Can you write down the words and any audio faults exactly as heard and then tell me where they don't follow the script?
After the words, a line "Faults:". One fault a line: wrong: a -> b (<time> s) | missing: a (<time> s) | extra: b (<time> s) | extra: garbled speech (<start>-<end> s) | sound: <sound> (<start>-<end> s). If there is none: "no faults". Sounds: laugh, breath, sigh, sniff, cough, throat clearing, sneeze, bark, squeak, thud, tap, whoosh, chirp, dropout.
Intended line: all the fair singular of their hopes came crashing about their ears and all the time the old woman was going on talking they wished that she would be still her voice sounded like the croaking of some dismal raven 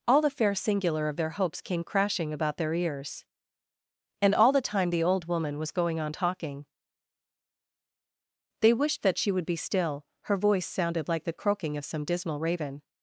all the fair singular of their hopes came crashing about their ears and all the time the old woman was going on talking they wished that she would be still her voice sounded like the croaking of some dismal raven
Faults:
no faults